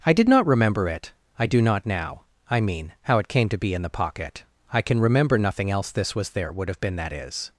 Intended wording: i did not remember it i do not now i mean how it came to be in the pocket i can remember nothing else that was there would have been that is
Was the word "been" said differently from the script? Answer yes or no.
no